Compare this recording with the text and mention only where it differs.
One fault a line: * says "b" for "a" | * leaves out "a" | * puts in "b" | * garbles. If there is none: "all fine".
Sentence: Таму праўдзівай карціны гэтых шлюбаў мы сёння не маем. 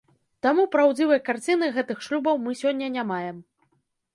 all fine